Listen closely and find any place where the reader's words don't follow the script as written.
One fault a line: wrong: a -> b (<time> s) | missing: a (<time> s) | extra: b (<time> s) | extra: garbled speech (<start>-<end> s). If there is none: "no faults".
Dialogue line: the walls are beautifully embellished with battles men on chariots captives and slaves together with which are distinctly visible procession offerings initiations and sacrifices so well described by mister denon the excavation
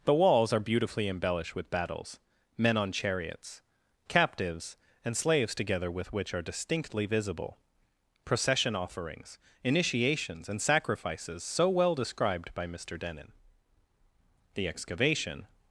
no faults